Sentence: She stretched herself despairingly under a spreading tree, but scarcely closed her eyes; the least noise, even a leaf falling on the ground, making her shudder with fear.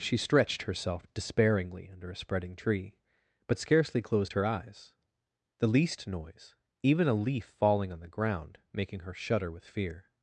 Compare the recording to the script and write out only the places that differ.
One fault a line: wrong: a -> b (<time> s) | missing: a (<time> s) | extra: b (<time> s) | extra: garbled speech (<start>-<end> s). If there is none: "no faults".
no faults